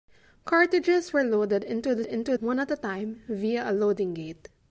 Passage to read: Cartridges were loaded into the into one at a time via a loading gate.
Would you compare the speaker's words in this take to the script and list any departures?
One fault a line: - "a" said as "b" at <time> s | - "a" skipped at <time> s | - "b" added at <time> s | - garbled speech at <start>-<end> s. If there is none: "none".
none